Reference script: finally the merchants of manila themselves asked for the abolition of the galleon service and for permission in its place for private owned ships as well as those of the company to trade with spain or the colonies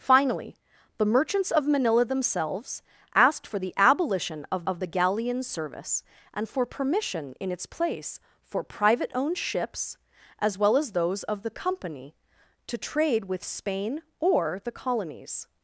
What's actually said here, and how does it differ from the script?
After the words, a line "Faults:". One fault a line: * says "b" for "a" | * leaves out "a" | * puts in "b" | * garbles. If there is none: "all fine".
finally the merchants of manila themselves asked for the abolition of of the galleon service and for permission in its place for private owned ships as well as those of the company to trade with spain or the colonies
Faults:
* puts in "of"